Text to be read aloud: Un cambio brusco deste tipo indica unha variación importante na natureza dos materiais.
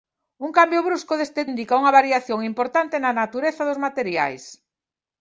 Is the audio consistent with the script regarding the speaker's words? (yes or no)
no